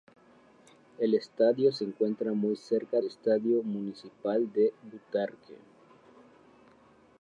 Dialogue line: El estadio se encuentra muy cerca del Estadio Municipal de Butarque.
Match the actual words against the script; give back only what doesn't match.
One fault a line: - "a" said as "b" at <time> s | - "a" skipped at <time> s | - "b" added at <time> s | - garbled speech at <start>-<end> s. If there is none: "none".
- "del" skipped at 3.0 s